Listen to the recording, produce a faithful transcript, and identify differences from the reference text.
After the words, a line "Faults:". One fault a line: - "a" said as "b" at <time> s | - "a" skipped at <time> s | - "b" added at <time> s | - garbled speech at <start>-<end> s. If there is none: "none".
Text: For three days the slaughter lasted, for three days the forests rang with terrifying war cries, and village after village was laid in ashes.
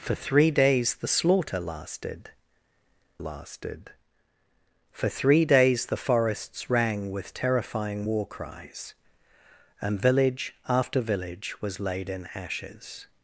For three days the slaughter lasted lasted, for three days the forests rang with terrifying war cries, and village after village was laid in ashes.
Faults:
- "lasted" added at 3.2 s